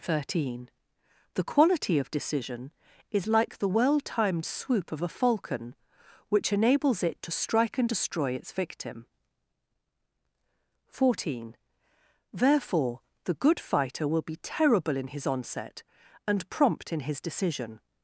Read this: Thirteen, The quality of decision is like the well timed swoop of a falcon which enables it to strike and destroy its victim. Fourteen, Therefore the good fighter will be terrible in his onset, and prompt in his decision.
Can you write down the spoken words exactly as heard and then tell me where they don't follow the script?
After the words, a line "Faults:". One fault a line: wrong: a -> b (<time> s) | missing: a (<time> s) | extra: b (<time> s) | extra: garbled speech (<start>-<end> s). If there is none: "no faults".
Thirteen, The quality of decision is like the well timed swoop of a falcon which enables it to strike and destroy its victim. Fourteen, Therefore the good fighter will be terrible in his onset, and prompt in his decision.
Faults:
no faults